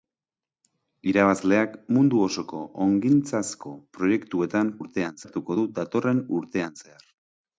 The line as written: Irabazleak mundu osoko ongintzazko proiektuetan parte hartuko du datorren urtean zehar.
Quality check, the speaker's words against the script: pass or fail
fail